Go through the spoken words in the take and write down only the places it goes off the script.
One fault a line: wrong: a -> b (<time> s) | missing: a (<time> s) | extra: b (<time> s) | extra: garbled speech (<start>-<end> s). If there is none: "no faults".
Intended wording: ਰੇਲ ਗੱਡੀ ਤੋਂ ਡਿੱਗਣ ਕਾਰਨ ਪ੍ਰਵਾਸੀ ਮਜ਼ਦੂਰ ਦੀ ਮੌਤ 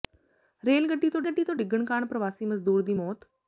extra: ਗੱਡੀ ਤੋਂ (1.2 s)